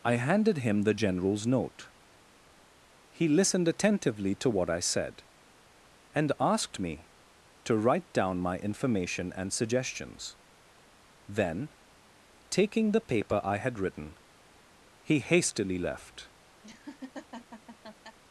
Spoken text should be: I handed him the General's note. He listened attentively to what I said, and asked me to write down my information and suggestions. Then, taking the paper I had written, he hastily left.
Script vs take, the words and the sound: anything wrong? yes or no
yes